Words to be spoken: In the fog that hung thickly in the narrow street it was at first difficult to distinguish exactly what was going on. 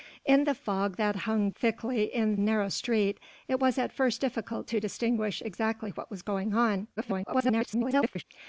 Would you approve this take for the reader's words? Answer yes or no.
no